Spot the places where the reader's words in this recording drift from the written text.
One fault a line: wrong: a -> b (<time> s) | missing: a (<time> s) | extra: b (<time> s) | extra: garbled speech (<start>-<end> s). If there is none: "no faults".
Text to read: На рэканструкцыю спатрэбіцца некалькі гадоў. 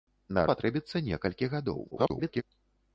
missing: рэканструкцыю (0.5 s)
extra: garbled speech (1.9-2.4 s)